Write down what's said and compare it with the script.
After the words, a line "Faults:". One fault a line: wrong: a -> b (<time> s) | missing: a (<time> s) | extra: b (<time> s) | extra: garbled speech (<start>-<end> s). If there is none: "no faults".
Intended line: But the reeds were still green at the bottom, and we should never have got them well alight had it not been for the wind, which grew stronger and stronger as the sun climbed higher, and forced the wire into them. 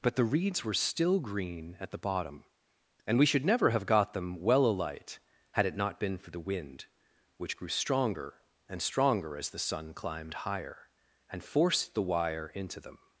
But the reeds were still green at the bottom, and we should never have got them well alight had it not been for the wind, which grew stronger and stronger as the sun climbed higher, and forced the wire into them.
Faults:
no faults